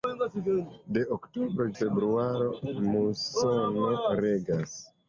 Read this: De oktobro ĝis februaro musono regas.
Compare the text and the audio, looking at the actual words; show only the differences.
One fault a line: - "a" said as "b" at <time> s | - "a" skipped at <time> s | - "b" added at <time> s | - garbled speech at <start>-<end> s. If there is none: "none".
- "ĝis" skipped at 1.7 s